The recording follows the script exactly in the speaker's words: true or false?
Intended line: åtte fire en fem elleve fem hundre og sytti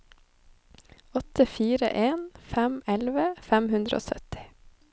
true